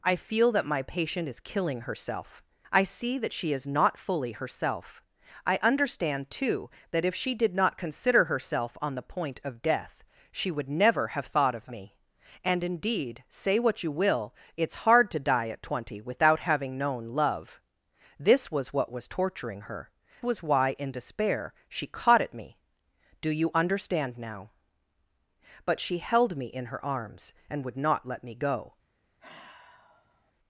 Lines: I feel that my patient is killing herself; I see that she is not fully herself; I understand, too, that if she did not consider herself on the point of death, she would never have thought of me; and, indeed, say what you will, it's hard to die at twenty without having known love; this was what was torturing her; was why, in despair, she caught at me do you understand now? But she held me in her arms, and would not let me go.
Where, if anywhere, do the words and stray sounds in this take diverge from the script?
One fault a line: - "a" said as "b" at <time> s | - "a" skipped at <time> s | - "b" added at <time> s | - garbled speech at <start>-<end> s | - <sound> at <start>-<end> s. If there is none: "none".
- sigh at 29.2-30.3 s